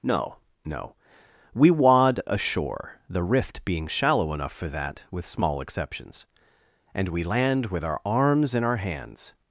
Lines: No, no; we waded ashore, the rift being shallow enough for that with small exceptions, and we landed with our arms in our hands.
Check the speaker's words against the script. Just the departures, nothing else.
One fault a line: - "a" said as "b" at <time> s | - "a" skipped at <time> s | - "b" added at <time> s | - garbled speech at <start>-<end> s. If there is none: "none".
- "waded" said as "wad" at 1.7 s
- "landed" said as "land" at 7.2 s